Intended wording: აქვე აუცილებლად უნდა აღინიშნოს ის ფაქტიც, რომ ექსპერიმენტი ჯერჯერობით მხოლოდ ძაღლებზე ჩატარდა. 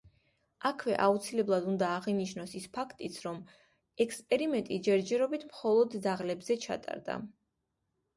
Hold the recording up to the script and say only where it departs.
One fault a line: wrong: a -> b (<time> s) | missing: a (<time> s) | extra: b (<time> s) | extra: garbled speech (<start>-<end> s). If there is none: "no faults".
no faults